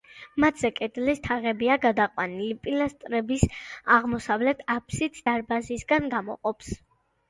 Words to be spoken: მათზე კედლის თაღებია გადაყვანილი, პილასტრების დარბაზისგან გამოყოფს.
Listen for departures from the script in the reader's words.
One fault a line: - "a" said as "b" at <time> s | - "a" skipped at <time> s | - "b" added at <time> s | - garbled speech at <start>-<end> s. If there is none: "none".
- "აღმოსავლეთ აფსიდს" added at 4.0 s